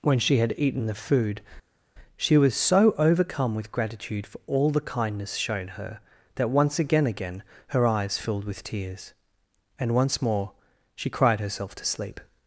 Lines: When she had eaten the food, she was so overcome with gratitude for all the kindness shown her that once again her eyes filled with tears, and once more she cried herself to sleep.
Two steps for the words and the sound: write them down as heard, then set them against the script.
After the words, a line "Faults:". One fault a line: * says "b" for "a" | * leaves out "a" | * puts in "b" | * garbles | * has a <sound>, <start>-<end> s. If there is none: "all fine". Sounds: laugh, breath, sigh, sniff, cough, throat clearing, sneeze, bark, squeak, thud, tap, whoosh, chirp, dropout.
When she had eaten the food, she was so overcome with gratitude for all the kindness shown her that once again again her eyes filled with tears, and once more she cried herself to sleep.
Faults:
* puts in "again"